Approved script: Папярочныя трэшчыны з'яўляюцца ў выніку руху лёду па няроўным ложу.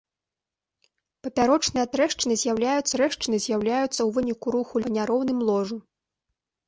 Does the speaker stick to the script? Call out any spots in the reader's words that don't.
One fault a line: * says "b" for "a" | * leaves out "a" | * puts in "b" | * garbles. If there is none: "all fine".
* puts in "трэшчыны з'яўляюцца"
* leaves out "лёду"